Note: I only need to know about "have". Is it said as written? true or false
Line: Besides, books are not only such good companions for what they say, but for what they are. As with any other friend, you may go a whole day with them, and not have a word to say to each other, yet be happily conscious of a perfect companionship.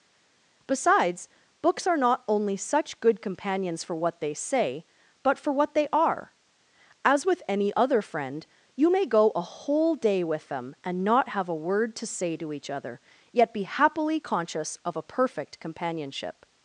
true